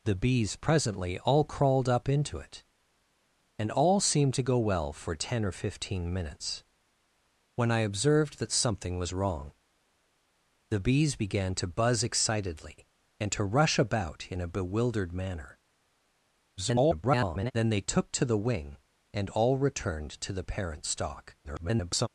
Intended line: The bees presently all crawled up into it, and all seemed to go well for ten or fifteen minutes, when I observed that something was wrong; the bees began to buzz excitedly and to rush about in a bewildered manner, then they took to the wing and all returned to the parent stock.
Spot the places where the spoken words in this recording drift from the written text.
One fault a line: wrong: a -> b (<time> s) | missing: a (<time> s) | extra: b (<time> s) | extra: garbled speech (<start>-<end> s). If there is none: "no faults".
extra: garbled speech (16.6-17.5 s)
extra: garbled speech (21.4-22.1 s)